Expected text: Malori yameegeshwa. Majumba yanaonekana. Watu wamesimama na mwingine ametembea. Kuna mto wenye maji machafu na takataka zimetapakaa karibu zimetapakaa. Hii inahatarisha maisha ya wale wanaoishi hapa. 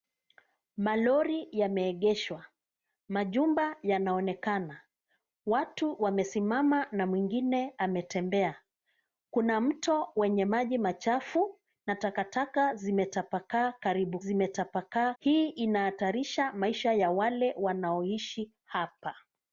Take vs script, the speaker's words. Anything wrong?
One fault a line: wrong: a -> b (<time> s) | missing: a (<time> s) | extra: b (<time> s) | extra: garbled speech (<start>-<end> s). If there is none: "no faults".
no faults